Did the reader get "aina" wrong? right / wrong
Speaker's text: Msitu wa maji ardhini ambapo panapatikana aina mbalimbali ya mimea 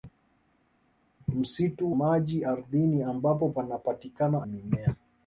wrong